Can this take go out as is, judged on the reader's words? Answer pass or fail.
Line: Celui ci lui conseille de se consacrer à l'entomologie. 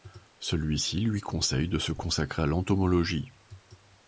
pass